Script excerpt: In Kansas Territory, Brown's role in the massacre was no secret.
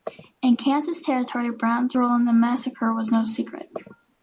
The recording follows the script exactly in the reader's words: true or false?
true